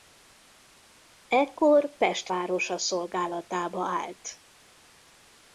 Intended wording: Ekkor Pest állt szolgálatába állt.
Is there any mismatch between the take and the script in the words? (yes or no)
yes